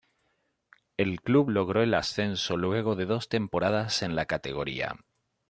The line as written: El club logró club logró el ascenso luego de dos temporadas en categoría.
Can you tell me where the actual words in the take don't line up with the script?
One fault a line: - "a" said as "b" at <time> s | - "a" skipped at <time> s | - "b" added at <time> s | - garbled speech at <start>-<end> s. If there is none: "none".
- "club logró" skipped at 1.8 s
- "la" added at 4.1 s